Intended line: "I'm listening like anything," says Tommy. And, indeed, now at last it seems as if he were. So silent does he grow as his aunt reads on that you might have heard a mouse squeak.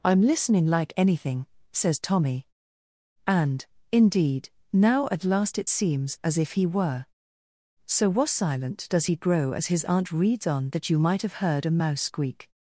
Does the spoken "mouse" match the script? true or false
true